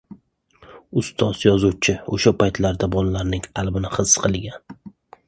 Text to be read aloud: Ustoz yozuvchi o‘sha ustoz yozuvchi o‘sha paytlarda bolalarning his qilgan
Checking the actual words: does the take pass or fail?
fail